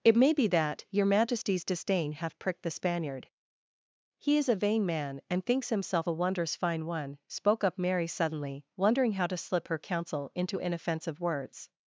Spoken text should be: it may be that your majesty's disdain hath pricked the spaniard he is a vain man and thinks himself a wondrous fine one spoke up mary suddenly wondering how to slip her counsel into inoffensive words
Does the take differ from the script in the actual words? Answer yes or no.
no